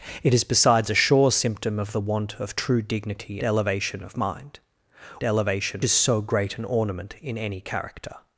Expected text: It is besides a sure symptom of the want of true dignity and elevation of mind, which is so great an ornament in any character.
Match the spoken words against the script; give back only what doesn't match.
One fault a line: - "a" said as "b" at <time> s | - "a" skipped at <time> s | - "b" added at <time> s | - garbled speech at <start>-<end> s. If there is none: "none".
- "and" skipped at 3.4 s
- "which" said as "elevation" at 5.2 s